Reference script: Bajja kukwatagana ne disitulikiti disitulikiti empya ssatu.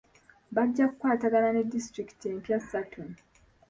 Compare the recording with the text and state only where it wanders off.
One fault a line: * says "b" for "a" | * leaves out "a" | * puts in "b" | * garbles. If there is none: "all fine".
* leaves out "disitulikiti"